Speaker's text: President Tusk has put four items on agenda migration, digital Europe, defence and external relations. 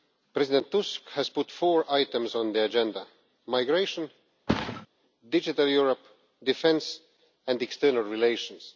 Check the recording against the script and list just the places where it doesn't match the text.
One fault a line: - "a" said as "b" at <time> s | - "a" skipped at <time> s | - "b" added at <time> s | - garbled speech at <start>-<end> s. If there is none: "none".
- "the" added at 2.5 s